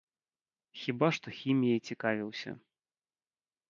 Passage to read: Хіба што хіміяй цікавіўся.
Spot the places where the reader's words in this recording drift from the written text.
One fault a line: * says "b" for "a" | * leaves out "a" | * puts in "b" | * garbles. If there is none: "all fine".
all fine